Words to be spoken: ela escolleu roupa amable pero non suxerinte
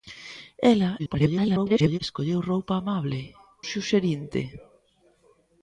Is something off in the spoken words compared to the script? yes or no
yes